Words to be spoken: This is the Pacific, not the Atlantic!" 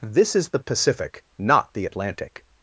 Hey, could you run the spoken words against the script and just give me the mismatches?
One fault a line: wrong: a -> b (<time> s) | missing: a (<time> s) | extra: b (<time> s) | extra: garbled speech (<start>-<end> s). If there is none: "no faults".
no faults